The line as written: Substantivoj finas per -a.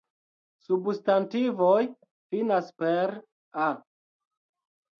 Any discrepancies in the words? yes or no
no